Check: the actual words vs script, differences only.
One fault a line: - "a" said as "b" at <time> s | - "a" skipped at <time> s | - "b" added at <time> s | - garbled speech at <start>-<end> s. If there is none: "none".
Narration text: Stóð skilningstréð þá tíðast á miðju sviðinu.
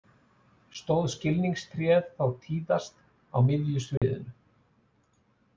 none